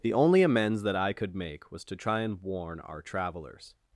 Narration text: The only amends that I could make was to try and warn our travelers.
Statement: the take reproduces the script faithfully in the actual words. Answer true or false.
true